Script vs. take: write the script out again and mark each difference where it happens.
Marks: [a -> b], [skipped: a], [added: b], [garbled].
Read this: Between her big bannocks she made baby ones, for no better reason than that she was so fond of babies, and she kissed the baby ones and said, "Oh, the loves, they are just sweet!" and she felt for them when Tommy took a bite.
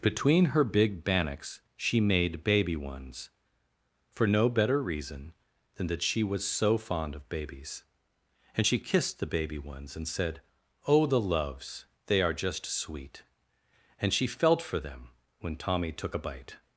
Between her big bannocks she made baby ones, for no better reason than that she was so fond of babies, and she kissed the baby ones and said, "Oh, the loves, they are just sweet!" and she felt for them when Tommy took a bite.